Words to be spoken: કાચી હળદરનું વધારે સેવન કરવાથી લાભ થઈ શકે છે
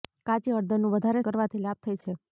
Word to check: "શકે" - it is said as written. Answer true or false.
false